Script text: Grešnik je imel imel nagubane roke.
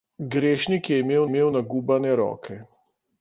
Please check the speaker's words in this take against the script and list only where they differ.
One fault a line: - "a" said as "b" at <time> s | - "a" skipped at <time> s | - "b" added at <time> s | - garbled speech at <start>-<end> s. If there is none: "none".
none